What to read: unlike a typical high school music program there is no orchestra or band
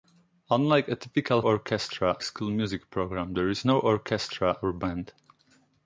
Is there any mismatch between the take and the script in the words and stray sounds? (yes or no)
yes